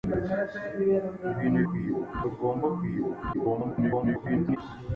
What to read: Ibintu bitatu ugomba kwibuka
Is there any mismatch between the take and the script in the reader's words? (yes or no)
yes